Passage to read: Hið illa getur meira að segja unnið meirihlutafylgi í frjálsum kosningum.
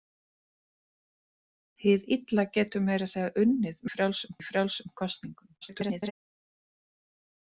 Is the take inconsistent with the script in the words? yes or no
yes